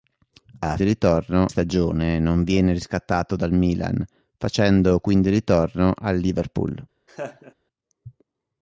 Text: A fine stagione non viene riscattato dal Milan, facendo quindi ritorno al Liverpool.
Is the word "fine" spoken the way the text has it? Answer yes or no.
no